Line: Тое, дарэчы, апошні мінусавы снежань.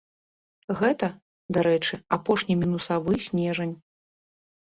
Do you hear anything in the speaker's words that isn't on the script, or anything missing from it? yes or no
yes